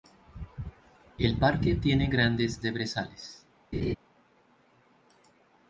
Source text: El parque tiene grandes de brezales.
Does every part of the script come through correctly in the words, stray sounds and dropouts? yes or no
no